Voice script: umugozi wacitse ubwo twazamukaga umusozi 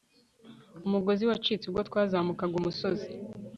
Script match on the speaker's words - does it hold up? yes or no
yes